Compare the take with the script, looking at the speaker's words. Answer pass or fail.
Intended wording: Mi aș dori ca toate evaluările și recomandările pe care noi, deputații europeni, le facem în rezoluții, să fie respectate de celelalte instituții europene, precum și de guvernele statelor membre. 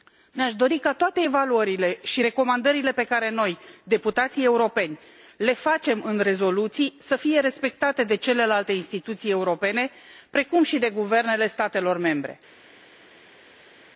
pass